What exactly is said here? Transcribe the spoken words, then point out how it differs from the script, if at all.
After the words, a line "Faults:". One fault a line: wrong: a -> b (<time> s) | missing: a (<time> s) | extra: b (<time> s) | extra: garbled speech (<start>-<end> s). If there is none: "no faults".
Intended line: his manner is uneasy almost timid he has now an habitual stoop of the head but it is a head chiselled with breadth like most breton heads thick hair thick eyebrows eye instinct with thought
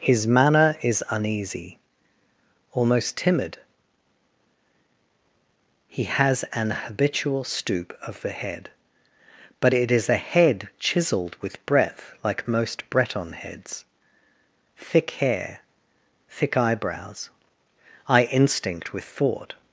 his manner is uneasy almost timid he has an habitual stoop of the head but it is a head chiselled with breadth like most breton heads thick hair thick eyebrows eye instinct with thought
Faults:
missing: now (6.4 s)